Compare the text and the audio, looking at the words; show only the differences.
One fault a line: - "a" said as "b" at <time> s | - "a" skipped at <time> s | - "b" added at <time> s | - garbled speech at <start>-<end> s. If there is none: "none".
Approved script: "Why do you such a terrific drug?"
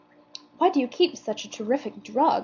- "keep" added at 0.9 s